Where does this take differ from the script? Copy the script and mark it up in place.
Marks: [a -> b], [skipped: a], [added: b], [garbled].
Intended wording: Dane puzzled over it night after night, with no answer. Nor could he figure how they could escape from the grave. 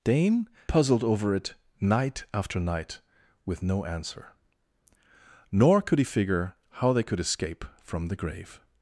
Dane puzzled over it night after night, with no answer. Nor could he figure how they could escape from the grave.